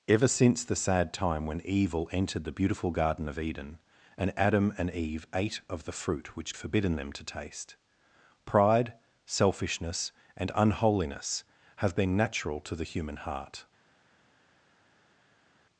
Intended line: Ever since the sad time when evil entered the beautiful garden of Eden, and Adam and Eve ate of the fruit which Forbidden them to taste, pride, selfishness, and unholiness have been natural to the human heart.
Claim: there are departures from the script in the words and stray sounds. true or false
false